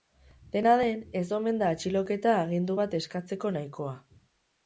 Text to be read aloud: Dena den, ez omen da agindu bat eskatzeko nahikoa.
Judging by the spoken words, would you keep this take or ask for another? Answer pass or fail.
fail